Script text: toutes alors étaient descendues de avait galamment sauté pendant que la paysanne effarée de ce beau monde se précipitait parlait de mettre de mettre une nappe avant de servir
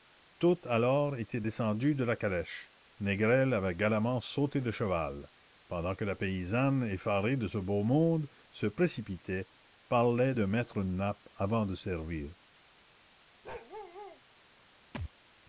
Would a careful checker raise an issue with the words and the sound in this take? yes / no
yes